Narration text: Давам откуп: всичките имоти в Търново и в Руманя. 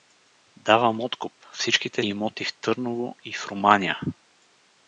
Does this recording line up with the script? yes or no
yes